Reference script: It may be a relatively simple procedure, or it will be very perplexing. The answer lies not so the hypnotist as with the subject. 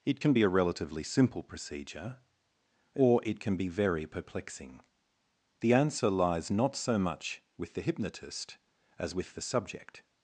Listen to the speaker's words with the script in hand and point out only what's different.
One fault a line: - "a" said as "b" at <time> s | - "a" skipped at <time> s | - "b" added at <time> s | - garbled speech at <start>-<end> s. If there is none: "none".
- "may" said as "can" at 0.2 s
- "will" said as "can" at 3.4 s
- "much with" added at 7.0 s